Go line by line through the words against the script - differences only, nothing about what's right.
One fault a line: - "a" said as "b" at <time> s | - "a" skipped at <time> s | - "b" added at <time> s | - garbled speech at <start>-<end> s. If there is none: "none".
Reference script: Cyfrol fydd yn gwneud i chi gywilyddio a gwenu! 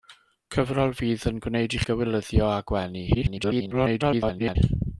- "chi" skipped at 1.8 s
- garbled speech at 3.1-4.6 s